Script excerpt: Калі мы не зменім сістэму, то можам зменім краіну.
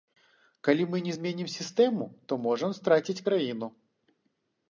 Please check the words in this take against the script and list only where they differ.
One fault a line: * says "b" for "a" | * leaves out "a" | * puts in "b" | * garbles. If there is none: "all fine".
* says "страціць" for "зменім"